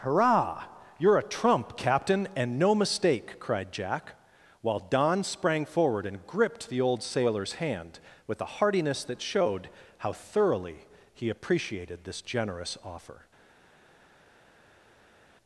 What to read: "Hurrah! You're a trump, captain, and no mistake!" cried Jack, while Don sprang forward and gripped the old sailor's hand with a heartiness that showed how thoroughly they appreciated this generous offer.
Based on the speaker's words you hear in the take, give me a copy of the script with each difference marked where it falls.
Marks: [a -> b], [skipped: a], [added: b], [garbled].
"Hurrah! You're a trump, captain, and no mistake!" cried Jack, while Don sprang forward and gripped the old sailor's hand with a heartiness that showed how thoroughly [they -> he] appreciated this generous offer.